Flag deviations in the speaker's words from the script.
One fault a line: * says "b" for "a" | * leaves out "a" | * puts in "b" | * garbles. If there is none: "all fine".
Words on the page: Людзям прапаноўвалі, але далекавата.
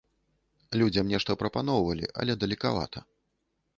* puts in "нешта"